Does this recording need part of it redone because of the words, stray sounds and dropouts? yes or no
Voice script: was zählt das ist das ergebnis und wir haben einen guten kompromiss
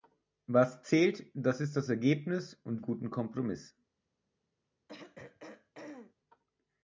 yes